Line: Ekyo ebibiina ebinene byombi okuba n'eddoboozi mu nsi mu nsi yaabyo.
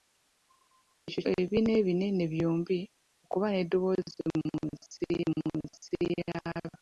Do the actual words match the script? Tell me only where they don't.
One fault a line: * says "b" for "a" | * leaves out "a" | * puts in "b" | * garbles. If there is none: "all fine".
all fine